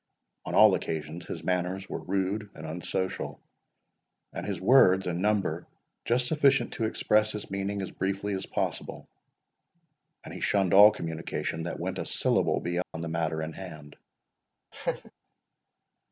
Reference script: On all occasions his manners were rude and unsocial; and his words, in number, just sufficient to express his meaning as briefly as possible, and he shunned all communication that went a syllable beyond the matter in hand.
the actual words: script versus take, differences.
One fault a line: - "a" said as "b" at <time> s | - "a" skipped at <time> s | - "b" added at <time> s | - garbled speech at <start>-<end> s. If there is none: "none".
none